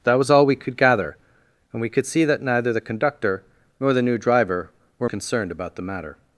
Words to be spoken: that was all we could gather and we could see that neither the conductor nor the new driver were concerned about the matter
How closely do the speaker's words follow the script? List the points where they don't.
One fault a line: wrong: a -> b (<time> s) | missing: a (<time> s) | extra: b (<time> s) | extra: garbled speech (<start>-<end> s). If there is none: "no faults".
no faults